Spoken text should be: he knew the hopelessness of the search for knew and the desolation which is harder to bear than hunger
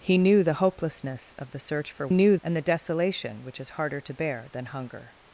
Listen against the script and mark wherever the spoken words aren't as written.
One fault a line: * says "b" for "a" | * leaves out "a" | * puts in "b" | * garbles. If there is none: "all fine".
all fine